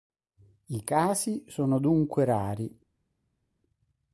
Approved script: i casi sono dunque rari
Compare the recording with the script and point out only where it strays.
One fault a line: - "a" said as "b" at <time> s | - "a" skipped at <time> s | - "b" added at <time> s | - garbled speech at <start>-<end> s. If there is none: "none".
none